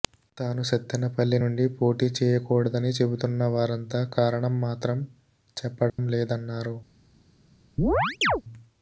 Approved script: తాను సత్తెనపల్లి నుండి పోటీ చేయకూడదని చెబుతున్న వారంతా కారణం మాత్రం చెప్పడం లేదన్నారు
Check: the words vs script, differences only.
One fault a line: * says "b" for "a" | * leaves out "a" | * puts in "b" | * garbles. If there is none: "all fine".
all fine